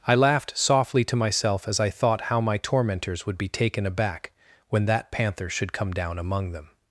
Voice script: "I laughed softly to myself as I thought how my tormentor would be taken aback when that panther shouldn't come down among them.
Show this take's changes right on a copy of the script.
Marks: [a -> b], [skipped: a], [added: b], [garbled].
"I laughed softly to myself as I thought how my [tormentor -> tormentors] would be taken aback when that panther [shouldn't -> should] come down among them.